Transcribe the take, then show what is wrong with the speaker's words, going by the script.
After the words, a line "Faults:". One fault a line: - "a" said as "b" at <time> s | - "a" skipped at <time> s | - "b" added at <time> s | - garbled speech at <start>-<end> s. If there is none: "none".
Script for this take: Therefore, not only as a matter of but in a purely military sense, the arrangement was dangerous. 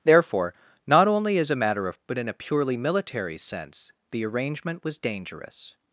Therefore, not only as a matter of but in a purely military sense, the arrangement was dangerous.
Faults:
none